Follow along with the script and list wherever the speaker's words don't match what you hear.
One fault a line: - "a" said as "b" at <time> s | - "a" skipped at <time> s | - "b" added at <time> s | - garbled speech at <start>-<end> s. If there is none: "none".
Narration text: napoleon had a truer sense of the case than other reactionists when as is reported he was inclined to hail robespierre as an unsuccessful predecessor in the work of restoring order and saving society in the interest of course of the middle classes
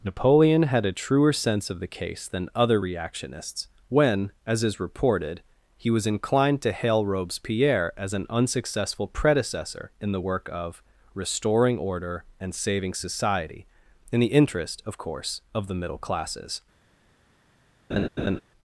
none